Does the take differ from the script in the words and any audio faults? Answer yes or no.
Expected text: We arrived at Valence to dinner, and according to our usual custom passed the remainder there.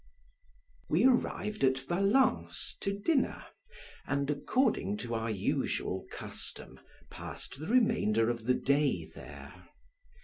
yes